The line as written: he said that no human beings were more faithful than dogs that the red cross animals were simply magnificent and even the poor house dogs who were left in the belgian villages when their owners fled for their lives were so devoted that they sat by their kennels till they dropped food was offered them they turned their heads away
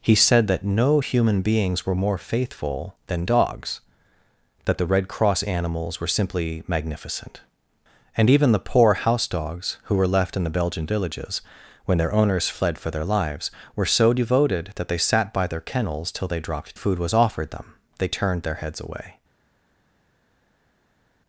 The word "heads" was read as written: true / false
true